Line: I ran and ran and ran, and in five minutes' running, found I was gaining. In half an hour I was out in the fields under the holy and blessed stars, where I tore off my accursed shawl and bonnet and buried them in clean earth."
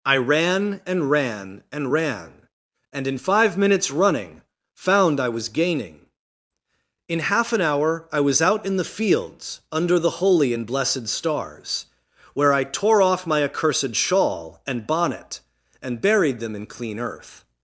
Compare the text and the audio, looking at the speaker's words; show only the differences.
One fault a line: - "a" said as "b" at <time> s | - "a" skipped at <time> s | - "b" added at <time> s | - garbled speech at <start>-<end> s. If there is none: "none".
none